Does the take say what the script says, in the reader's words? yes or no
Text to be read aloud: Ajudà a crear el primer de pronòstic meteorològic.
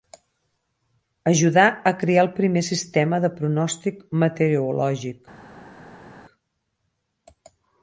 no